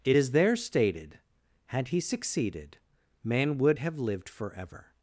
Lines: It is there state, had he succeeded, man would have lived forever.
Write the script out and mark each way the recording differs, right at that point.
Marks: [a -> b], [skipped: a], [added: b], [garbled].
It is there [state, -> stated] had he succeeded, man would have lived forever.